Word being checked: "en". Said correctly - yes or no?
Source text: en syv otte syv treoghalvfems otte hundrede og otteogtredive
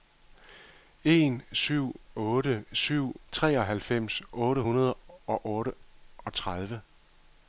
yes